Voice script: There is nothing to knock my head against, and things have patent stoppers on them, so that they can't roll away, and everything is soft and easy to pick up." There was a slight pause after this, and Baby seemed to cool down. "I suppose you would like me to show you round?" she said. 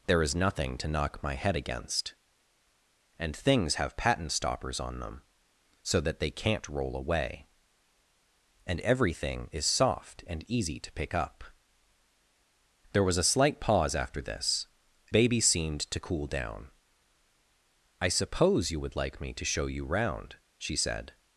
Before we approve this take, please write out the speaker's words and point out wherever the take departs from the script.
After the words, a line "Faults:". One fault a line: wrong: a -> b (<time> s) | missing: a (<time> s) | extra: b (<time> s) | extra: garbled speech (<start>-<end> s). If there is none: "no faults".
There is nothing to knock my head against, and things have patent stoppers on them, so that they can't roll away, and everything is soft and easy to pick up." There was a slight pause after this, Baby seemed to cool down. "I suppose you would like me to show you round?" she said.
Faults:
missing: and (14.7 s)